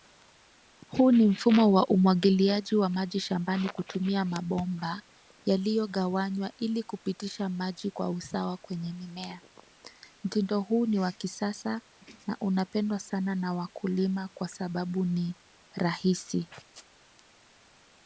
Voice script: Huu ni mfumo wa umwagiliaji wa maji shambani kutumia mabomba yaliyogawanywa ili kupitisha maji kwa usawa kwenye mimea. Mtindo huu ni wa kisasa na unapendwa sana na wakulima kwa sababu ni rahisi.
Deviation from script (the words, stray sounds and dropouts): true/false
false